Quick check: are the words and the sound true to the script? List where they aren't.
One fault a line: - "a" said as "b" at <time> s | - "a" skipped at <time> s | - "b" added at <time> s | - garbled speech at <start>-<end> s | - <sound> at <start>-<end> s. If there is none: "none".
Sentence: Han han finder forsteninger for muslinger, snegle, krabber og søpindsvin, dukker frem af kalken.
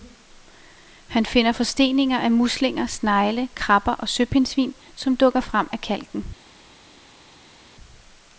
- "han" skipped at 1.2 s
- "for" said as "af" at 2.2 s
- "som" added at 5.0 s